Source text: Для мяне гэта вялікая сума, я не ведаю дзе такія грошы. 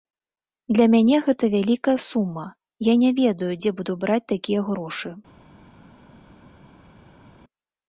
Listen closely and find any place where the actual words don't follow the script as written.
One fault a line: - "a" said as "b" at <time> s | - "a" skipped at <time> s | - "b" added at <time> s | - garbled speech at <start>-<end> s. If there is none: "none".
- "буду браць" added at 3.8 s